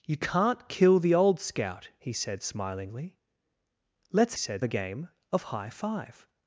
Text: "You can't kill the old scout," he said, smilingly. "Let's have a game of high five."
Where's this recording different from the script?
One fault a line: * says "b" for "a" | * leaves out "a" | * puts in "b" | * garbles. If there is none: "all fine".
* says "said" for "have"